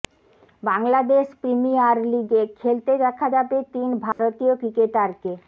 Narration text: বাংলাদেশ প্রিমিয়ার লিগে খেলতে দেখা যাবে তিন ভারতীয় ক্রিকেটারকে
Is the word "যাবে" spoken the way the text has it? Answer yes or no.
yes